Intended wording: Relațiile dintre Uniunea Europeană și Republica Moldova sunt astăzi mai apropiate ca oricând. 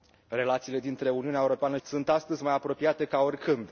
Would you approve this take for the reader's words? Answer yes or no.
no